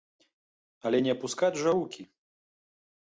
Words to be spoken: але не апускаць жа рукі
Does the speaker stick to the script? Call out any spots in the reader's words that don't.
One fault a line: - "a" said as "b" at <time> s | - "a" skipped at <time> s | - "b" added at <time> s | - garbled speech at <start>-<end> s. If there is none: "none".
none